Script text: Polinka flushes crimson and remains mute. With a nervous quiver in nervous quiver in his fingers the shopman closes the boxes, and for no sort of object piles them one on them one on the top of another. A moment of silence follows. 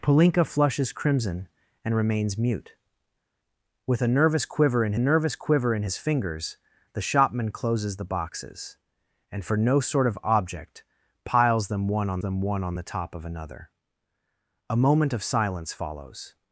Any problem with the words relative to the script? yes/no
no